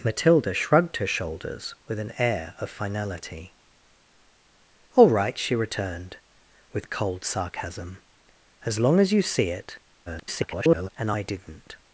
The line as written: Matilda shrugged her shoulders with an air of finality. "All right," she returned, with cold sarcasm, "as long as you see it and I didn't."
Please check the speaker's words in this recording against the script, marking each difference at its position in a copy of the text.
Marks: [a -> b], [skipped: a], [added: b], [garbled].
Matilda shrugged her shoulders with an air of finality. "All right," she returned, with cold sarcasm, "as long as you see it [garbled] and I didn't."